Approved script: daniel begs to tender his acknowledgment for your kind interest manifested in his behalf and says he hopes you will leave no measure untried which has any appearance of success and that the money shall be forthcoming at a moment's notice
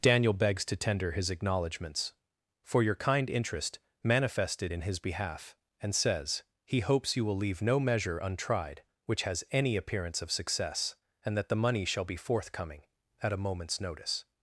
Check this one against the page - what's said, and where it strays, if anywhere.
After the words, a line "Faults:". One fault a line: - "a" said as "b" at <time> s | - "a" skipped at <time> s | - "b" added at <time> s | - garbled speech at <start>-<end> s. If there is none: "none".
daniel begs to tender his acknowledgments for your kind interest manifested in his behalf and says he hopes you will leave no measure untried which has any appearance of success and that the money shall be forthcoming at a moment's notice
Faults:
- "acknowledgment" said as "acknowledgments" at 1.3 s